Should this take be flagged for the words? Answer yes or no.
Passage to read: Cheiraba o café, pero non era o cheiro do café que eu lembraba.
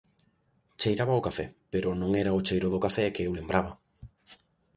no